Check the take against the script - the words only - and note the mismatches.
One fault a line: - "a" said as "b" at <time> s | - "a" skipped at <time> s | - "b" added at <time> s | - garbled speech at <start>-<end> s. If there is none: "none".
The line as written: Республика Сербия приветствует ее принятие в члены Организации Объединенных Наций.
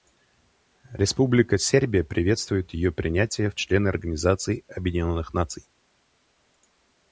none